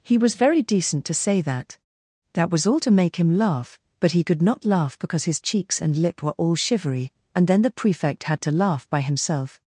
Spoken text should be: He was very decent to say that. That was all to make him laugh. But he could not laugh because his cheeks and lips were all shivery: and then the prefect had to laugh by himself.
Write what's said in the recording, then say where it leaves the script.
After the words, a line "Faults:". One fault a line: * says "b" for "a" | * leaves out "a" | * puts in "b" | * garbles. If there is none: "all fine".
He was very decent to say that. That was all to make him laugh. But he could not laugh because his cheeks and lip were all shivery: and then the prefect had to laugh by himself.
Faults:
* says "lip" for "lips"